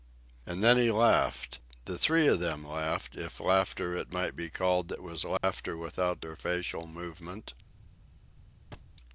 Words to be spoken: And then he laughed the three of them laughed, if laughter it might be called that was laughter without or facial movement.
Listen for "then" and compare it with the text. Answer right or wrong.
right